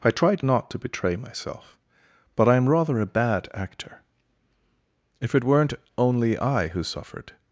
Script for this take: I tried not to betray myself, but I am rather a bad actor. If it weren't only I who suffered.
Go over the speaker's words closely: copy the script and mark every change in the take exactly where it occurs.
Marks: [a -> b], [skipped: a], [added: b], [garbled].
I tried not to betray myself, but I am rather a bad actor. If it weren't only I who suffered.